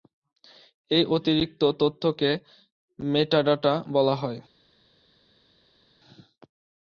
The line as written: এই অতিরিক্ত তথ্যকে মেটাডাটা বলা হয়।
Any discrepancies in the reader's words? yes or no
no